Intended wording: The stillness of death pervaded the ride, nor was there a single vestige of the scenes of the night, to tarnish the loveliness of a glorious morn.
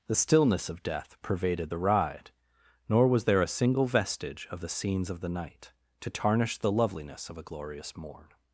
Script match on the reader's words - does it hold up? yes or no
yes